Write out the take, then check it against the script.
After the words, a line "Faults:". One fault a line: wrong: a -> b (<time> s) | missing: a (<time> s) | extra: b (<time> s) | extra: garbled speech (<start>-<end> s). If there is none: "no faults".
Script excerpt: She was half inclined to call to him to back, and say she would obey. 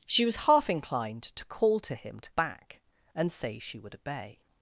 She was half inclined to call to him to back, and say she would obey.
Faults:
no faults